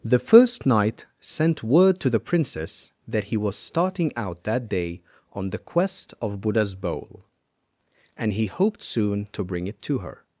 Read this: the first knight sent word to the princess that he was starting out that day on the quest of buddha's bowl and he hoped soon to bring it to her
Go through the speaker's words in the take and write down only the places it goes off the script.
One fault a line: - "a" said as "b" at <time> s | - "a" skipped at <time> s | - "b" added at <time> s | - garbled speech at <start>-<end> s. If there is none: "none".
none